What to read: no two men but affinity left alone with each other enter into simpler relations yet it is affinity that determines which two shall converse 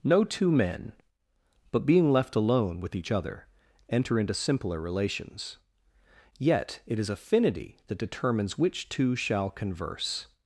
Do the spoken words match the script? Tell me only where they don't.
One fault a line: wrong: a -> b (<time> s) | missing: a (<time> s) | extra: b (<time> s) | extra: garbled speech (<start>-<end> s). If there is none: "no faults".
wrong: affinity -> being (1.9 s)